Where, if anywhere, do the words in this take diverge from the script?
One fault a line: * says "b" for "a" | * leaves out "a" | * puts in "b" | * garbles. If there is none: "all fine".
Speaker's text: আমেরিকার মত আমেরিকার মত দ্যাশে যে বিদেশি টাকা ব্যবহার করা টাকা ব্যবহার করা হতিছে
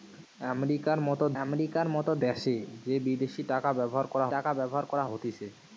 all fine